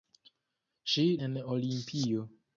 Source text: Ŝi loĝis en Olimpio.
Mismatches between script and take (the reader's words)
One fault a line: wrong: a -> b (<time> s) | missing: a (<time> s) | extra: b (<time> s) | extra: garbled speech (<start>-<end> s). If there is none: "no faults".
missing: loĝis (1.0 s)